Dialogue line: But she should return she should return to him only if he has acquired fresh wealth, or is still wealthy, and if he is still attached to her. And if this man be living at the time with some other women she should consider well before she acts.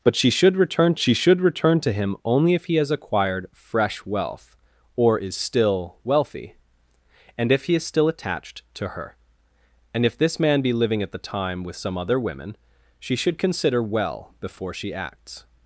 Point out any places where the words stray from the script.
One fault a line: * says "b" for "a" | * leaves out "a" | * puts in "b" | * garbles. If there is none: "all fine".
all fine